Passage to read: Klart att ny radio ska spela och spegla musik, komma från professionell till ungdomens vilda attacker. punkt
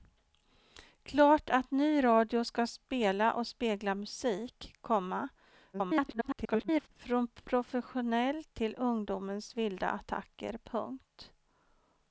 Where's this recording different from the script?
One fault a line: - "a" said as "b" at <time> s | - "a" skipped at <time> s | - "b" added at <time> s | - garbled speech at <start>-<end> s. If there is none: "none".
- garbled speech at 5.7-6.9 s